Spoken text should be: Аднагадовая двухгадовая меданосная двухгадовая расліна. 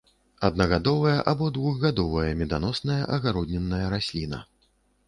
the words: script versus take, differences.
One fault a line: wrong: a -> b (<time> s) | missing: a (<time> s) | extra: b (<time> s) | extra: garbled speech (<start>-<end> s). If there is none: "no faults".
extra: або (1.3 s)
wrong: двухгадовая -> агароднінная (3.2 s)